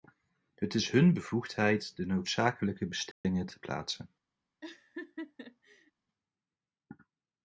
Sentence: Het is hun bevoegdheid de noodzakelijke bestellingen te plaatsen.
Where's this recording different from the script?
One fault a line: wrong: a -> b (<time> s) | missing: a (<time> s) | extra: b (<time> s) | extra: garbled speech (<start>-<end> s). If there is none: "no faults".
no faults